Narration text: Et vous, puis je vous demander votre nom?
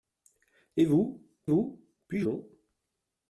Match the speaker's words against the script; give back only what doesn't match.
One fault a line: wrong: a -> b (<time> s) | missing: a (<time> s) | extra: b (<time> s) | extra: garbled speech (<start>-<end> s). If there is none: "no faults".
extra: vous (1.5 s)
missing: vous demander votre (2.2 s)